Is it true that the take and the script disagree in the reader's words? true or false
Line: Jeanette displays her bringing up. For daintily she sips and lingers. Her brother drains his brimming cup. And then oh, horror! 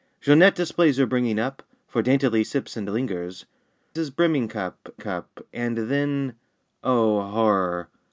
true